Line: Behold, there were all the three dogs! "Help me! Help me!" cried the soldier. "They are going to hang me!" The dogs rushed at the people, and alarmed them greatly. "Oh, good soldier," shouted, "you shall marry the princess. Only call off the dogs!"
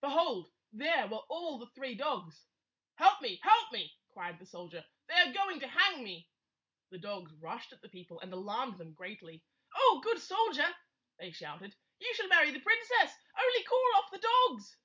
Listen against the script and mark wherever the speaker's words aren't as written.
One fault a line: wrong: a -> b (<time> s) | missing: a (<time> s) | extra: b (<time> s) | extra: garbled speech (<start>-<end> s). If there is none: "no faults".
extra: they (11.2 s)